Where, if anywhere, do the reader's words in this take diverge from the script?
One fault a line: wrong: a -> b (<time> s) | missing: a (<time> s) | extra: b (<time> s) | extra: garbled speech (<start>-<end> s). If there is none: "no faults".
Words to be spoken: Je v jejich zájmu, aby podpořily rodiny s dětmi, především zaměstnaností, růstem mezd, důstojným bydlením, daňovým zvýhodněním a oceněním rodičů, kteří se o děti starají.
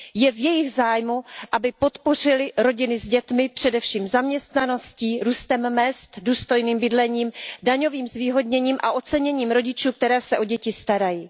no faults